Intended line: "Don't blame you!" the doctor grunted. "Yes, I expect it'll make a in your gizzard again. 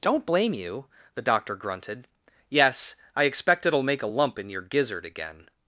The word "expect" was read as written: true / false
true